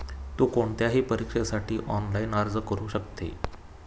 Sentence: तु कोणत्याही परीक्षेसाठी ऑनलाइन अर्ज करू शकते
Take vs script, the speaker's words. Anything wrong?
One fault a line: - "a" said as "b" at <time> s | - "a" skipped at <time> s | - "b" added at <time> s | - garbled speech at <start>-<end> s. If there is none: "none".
none